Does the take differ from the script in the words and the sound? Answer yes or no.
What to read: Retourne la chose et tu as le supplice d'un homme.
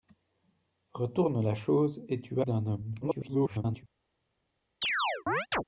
yes